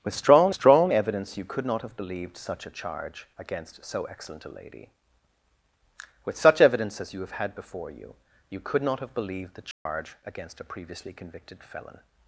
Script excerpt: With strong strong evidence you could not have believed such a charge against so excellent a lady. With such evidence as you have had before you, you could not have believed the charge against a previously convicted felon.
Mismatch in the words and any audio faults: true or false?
true